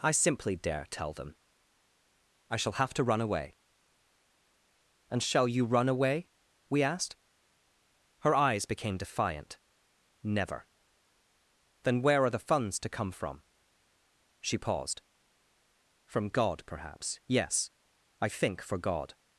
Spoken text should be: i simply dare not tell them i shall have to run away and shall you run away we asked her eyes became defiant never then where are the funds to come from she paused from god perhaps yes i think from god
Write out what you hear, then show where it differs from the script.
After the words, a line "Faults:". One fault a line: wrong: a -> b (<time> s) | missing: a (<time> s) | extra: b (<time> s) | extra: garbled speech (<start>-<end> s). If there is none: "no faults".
i simply dare tell them i shall have to run away and shall you run away we asked her eyes became defiant never then where are the funds to come from she paused from god perhaps yes i think for god
Faults:
missing: not (0.8 s)
wrong: from -> for (18.6 s)